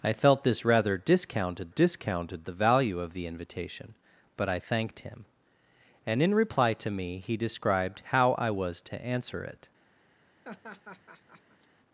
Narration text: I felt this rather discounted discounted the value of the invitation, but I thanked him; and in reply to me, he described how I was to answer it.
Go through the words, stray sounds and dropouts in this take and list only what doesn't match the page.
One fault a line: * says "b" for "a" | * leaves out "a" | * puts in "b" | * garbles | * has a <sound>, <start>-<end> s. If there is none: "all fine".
* has a laugh, 10.4-11.7 s